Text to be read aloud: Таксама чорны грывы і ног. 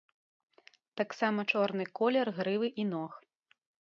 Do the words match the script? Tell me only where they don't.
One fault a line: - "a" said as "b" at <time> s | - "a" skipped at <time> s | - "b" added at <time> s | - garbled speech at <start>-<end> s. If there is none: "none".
- "колер" added at 2.0 s